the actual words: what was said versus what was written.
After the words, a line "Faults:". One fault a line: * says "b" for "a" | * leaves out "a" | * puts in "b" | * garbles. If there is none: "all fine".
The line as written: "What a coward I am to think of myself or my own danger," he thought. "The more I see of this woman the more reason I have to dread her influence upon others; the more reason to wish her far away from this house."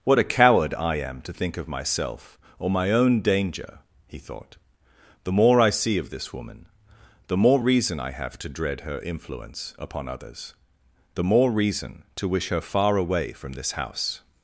"What a coward I am to think of myself or my own danger," he thought. "The more I see of this woman the more reason I have to dread her influence upon others; the more reason to wish her far away from this house."
Faults:
all fine